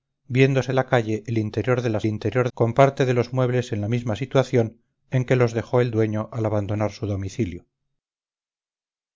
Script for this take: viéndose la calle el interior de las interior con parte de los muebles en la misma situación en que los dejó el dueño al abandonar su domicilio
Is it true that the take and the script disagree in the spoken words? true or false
false